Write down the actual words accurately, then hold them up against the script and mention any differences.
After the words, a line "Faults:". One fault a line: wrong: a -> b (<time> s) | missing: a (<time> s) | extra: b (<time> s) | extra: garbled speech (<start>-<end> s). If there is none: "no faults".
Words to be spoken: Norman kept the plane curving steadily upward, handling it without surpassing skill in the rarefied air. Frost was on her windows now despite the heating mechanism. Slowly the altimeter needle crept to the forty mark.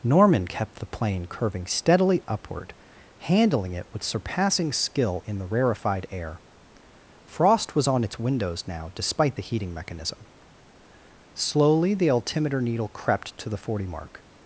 Norman kept the plane curving steadily upward, handling it with surpassing skill in the rarefied air. Frost was on its windows now despite the heating mechanism. Slowly the altimeter needle crept to the forty mark.
Faults:
wrong: without -> with (3.9 s)
wrong: her -> its (8.0 s)